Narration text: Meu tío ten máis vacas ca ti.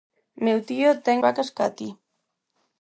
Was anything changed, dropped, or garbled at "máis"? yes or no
yes